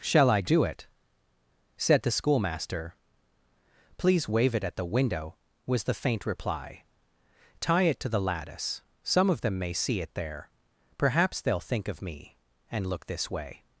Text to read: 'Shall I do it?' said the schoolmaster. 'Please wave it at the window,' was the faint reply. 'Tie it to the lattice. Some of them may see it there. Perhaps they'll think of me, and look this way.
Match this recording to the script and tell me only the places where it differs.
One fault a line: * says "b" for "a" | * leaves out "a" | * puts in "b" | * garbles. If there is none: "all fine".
all fine